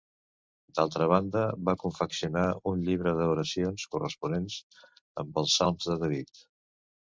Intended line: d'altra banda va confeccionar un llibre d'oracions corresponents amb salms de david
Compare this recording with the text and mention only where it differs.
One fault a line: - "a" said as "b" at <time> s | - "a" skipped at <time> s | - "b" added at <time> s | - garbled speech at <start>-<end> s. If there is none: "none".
- "els" added at 5.5 s